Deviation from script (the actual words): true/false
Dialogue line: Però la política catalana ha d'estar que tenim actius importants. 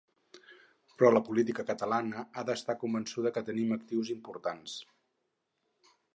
true